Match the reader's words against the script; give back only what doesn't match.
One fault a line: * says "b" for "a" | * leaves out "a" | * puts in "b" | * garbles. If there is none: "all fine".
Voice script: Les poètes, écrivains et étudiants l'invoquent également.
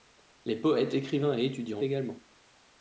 * leaves out "l'invoquent"